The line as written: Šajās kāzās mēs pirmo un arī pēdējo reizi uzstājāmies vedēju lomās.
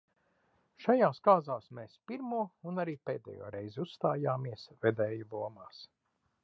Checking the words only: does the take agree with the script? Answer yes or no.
yes